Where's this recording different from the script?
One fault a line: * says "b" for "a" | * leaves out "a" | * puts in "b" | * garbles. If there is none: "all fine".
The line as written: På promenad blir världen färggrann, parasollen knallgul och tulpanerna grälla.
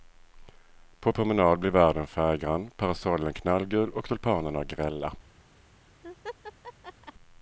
all fine